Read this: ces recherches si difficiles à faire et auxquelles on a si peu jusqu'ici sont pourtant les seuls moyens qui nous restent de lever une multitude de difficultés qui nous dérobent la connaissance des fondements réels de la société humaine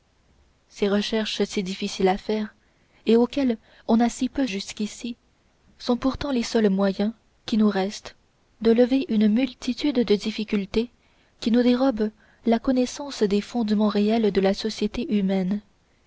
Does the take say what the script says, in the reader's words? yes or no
yes